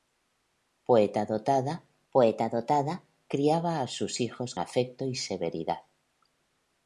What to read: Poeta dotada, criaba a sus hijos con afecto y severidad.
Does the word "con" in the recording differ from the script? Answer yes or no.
yes